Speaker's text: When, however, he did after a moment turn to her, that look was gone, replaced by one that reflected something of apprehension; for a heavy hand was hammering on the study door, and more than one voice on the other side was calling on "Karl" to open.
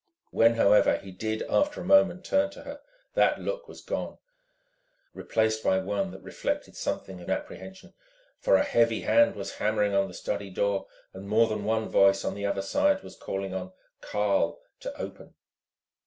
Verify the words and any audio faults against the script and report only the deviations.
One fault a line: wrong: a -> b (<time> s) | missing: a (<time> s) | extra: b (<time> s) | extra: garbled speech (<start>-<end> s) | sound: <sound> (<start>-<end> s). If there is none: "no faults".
no faults